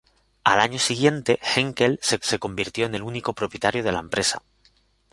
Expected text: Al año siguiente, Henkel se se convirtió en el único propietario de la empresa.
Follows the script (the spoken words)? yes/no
yes